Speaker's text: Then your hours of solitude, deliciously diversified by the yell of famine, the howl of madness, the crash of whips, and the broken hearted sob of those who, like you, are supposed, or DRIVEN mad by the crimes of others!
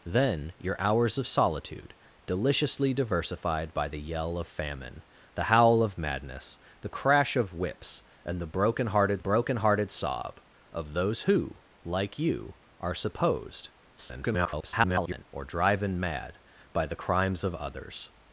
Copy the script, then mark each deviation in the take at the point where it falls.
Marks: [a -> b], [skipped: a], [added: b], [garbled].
Then your hours of solitude, deliciously diversified by the yell of famine, the howl of madness, the crash of whips, and the broken hearted [added: broken hearted] sob of those who, like you, are supposed, [garbled] or DRIVEN mad by the crimes of others!